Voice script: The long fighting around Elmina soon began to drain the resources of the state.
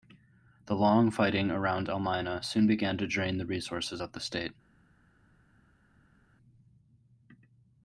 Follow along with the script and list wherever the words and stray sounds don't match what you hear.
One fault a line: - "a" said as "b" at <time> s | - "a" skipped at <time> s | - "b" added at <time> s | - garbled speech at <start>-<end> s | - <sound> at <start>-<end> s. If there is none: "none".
none